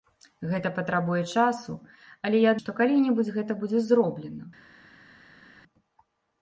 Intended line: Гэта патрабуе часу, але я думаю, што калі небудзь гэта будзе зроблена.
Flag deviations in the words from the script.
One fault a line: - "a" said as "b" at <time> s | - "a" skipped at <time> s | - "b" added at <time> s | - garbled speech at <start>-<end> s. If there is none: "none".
- "думаю" skipped at 2.6 s